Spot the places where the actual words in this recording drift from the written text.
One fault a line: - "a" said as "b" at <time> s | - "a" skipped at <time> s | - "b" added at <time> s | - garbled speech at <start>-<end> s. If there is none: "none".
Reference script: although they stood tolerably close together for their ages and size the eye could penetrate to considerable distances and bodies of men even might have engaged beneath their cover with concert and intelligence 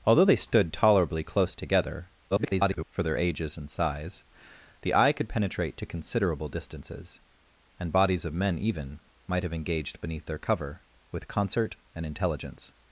- garbled speech at 2.3-2.9 s